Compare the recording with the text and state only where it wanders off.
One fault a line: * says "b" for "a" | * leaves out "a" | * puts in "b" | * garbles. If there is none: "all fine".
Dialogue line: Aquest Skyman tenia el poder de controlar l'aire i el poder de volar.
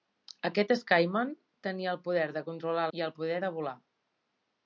* leaves out "l'aire"